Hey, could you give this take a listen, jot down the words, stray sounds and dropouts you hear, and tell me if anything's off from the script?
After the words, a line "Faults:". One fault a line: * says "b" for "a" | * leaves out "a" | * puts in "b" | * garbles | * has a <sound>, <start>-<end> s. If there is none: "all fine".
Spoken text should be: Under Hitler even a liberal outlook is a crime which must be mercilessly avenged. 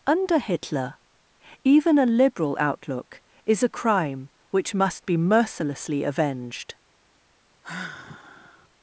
Under Hitler even a liberal outlook is a crime which must be mercilessly avenged.
Faults:
* has a sigh, 7.6-8.7 s